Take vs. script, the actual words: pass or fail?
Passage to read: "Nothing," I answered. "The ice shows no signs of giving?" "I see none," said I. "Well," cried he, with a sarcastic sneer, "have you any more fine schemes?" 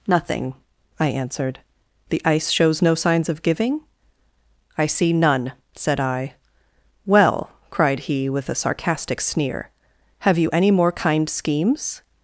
fail